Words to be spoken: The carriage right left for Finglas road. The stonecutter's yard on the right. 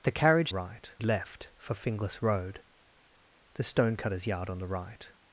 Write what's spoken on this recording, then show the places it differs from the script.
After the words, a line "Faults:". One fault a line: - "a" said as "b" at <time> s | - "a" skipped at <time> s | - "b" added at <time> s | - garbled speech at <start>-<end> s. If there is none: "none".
The carriage right left for Finglas road. The stonecutter's yard on the right.
Faults:
none